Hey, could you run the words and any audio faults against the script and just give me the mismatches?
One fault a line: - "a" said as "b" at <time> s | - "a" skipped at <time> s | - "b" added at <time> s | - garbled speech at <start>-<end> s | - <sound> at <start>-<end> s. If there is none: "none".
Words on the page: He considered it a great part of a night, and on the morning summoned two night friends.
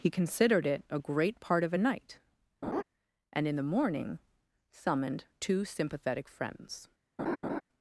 - laugh at 2.6-2.8 s
- "on" said as "in" at 3.5 s
- "night" said as "sympathetic" at 5.6 s
- laugh at 7.2-7.6 s